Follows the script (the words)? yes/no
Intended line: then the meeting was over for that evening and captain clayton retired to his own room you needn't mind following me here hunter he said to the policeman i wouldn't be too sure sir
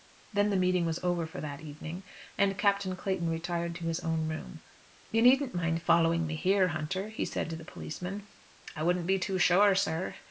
yes